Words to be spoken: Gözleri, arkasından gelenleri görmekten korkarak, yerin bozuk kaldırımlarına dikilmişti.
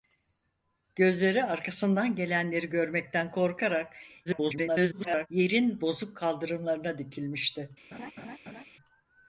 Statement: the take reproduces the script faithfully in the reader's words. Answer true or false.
false